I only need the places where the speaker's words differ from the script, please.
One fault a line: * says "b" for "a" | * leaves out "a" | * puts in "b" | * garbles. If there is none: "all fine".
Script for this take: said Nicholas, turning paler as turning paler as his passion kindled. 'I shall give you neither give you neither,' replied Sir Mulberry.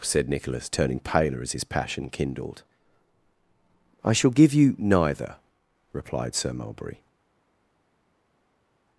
* leaves out "turning paler as"
* leaves out "give you neither"